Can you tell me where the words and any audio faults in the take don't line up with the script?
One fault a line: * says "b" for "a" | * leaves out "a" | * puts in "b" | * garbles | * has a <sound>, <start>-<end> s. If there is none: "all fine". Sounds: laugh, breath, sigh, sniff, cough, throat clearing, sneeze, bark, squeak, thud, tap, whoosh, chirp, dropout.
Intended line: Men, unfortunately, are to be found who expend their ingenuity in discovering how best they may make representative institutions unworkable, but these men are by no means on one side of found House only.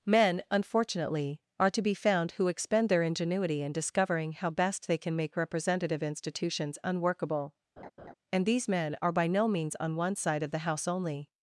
* says "can" for "may"
* has a laugh, 7.8-8.1 s
* says "and" for "but"
* says "the" for "found"